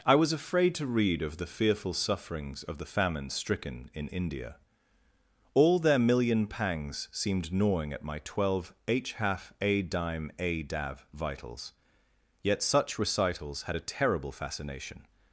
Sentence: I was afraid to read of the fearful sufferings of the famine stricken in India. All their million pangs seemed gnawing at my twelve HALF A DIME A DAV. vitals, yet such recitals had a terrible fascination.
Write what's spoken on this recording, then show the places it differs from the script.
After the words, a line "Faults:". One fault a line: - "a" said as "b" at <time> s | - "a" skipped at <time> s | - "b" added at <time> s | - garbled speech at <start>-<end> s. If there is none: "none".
I was afraid to read of the fearful sufferings of the famine stricken in India. All their million pangs seemed gnawing at my twelve h HALF A DIME A DAV. vitals, yet such recitals had a terrible fascination.
Faults:
- "h" added at 8.9 s